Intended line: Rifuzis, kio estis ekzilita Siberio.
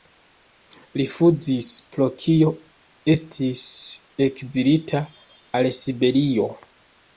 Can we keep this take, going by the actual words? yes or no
no